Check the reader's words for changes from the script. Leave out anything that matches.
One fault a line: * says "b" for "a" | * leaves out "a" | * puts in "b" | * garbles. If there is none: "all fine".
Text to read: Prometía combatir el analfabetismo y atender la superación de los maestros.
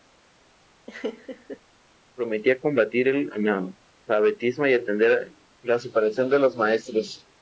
all fine